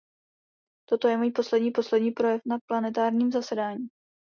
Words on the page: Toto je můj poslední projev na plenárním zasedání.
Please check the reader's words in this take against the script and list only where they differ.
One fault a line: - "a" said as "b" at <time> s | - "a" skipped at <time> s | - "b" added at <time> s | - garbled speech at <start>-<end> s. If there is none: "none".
- "poslední" added at 1.7 s